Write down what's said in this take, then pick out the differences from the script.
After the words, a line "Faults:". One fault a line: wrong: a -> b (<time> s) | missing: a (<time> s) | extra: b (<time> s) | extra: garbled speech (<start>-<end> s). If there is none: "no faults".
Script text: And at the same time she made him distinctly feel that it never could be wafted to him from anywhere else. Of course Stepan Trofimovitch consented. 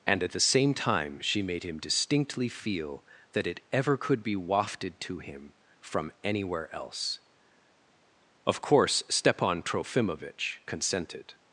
And at the same time she made him distinctly feel that it ever could be wafted to him from anywhere else. Of course Stepan Trofimovitch consented.
Faults:
wrong: never -> ever (3.7 s)